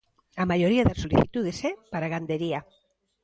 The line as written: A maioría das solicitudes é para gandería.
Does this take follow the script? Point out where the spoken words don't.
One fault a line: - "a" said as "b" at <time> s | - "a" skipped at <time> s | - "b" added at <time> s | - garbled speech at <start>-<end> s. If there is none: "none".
none